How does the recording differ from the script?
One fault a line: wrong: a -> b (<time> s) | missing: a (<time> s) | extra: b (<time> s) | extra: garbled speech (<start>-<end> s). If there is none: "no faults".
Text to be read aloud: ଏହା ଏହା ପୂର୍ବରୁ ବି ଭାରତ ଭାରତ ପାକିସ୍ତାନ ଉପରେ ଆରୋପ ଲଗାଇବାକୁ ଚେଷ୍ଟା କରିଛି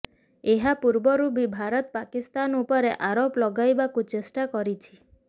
missing: ଏହା (0.7 s)
missing: ଭାରତ (1.9 s)